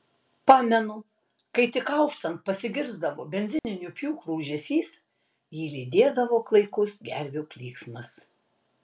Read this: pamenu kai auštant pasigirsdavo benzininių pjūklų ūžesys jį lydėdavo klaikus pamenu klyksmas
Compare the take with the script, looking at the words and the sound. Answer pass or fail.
fail